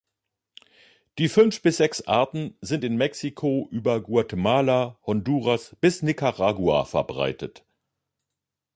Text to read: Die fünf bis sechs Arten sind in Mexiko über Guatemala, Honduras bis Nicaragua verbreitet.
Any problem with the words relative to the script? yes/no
no